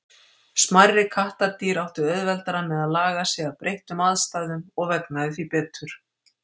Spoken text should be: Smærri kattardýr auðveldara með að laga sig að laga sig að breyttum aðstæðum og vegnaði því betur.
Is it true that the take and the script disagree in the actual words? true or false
true